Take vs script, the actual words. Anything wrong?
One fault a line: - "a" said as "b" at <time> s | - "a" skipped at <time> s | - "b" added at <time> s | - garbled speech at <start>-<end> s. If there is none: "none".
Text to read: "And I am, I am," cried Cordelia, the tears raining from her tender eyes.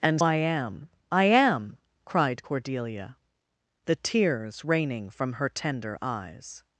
none